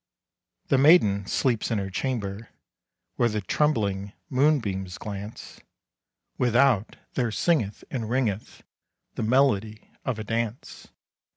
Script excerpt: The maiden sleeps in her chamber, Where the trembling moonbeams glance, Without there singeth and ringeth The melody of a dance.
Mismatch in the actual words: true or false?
false